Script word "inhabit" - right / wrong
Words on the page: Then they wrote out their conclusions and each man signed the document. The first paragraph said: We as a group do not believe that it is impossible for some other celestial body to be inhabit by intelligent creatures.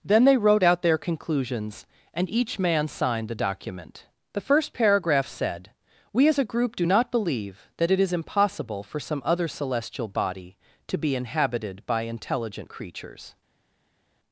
wrong